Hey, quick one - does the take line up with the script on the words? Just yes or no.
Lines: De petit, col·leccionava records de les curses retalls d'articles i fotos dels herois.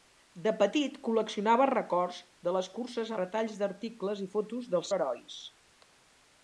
yes